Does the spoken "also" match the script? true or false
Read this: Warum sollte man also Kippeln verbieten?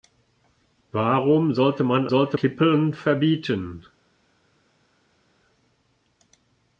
false